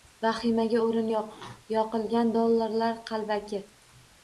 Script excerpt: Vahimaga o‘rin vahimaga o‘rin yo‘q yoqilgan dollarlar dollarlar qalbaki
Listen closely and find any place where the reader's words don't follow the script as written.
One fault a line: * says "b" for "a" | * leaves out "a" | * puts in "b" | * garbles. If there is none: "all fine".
* leaves out "vahimaga o‘rin"
* leaves out "dollarlar"